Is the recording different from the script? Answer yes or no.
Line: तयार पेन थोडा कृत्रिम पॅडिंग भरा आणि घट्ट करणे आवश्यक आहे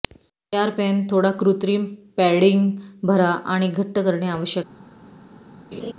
no